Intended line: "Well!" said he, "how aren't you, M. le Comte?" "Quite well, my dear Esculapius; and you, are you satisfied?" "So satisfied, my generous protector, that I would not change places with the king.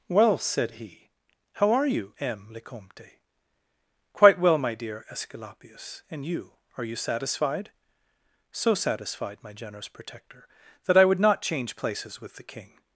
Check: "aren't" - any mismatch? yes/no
yes